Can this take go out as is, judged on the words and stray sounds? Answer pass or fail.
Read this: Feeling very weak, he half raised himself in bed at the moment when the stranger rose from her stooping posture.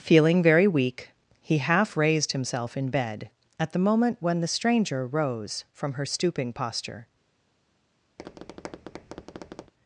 fail